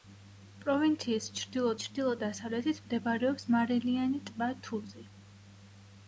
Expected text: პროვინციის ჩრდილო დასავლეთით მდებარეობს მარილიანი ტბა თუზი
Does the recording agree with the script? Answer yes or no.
no